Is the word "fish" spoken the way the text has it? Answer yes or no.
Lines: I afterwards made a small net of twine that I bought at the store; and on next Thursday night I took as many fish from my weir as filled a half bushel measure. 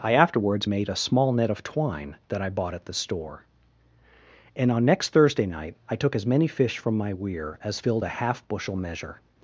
yes